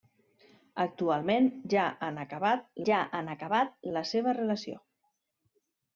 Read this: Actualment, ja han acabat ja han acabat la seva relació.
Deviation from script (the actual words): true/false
false